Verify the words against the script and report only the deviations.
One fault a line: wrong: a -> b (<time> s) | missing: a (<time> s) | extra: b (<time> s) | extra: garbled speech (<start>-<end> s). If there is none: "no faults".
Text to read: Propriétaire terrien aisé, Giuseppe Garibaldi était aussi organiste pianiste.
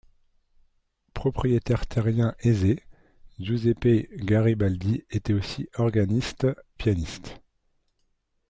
no faults